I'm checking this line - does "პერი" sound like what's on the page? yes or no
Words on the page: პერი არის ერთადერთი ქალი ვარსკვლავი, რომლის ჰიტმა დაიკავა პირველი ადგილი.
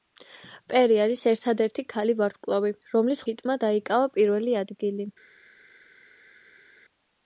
yes